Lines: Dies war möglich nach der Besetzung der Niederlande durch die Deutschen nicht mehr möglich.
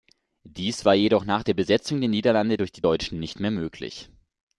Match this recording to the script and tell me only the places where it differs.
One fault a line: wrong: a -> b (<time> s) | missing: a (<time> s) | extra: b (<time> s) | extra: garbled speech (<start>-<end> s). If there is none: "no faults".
wrong: möglich -> jedoch (0.9 s)